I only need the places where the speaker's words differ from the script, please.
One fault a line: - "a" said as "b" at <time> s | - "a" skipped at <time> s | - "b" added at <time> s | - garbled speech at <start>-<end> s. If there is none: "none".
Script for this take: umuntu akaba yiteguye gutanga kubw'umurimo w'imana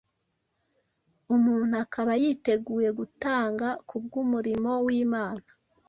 none